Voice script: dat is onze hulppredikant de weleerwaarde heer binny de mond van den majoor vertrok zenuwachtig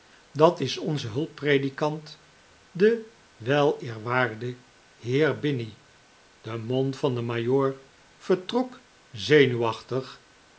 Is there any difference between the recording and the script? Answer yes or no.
no